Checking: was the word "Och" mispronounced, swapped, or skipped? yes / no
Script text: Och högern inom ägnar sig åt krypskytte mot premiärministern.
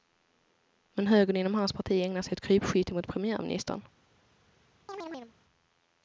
yes